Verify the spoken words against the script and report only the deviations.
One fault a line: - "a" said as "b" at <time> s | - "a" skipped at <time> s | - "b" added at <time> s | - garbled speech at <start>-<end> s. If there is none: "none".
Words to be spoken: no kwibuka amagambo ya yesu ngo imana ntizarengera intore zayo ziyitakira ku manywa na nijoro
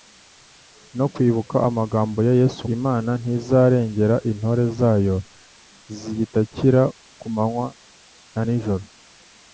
- "ngo" skipped at 2.6 s